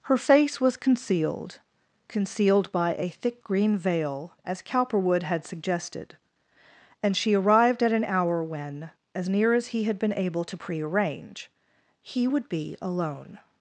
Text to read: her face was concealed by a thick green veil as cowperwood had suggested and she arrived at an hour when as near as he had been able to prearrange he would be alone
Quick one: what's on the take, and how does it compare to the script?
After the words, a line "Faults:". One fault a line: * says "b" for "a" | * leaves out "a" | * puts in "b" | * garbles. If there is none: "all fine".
her face was concealed concealed by a thick green veil as cowperwood had suggested and she arrived at an hour when as near as he had been able to prearrange he would be alone
Faults:
* puts in "concealed"